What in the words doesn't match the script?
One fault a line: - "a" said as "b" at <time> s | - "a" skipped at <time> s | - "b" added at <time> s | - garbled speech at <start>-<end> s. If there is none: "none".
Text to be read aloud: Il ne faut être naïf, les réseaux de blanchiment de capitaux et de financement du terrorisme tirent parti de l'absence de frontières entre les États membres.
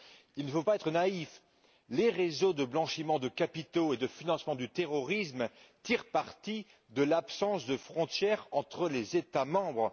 - "pas" added at 0.6 s